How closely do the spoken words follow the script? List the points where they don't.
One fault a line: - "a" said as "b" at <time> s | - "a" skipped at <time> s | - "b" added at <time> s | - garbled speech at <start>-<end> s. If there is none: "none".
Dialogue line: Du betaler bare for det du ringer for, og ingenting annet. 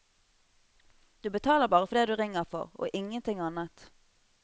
none